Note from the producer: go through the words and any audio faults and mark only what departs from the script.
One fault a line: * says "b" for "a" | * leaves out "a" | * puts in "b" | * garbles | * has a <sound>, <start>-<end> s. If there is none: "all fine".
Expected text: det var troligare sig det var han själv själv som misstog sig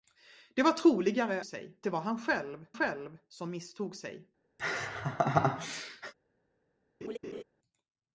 * has a laugh, 4.6-6.1 s
* has a laugh, 7.0-7.4 s